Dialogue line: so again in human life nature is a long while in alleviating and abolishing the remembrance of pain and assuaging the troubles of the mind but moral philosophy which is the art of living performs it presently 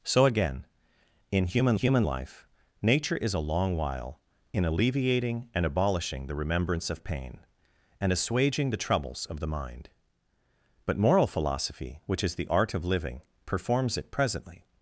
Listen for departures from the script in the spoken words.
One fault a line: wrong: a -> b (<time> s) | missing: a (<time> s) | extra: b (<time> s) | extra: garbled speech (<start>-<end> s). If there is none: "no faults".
extra: human (1.7 s)